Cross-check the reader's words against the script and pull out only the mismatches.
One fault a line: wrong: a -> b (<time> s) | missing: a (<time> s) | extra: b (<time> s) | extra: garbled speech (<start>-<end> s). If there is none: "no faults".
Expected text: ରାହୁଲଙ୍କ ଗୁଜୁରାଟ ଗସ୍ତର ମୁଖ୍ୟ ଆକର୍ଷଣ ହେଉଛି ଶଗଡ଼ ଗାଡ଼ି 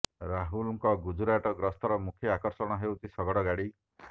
no faults